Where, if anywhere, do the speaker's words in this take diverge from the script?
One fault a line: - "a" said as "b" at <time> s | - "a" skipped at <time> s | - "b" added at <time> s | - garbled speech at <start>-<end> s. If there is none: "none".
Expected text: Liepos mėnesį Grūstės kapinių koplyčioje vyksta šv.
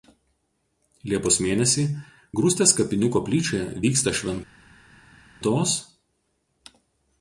none